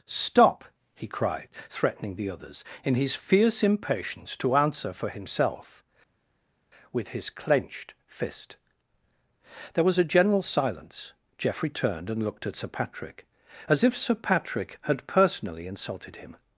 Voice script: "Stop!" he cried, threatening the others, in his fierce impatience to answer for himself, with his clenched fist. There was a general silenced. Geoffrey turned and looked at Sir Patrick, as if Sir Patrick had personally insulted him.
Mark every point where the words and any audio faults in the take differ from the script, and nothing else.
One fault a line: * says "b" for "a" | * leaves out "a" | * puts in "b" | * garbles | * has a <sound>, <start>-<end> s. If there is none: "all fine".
* says "silence" for "silenced"